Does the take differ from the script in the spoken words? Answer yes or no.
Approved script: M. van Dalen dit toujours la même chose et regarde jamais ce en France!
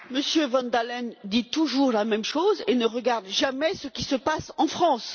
yes